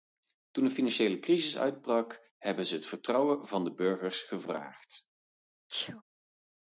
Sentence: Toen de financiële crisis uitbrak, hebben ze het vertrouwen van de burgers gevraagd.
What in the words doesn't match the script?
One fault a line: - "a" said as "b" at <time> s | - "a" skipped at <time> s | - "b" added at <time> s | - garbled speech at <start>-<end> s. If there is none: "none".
none